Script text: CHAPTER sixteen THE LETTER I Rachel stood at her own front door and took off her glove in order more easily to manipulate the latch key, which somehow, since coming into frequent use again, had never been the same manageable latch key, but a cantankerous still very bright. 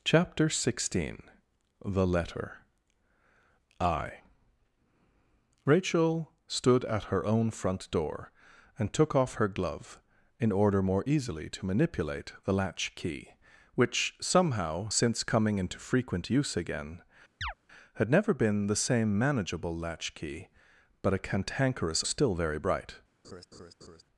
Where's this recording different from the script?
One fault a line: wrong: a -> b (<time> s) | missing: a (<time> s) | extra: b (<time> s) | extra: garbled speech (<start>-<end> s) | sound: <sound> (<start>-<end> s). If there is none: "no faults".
sound: chirp (17.4-17.5 s)
sound: laugh (23.2-24.0 s)